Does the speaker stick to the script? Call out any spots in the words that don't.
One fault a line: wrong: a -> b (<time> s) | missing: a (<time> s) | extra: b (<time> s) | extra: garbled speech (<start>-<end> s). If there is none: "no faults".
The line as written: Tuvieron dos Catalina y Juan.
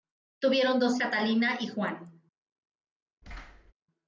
no faults